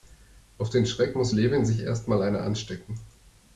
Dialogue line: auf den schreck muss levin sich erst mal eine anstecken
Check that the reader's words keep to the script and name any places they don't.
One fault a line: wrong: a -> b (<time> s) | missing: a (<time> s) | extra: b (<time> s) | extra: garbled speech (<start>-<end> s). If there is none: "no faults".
no faults